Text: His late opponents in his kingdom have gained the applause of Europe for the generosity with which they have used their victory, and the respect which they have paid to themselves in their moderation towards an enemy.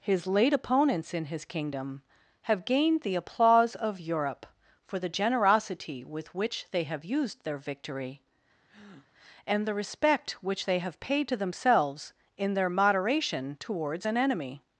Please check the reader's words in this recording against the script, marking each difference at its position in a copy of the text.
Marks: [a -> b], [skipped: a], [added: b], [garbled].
His late opponents in his kingdom have gained the applause of Europe for the generosity with which they have used their victory, and the respect which they have paid to themselves in their moderation towards an enemy.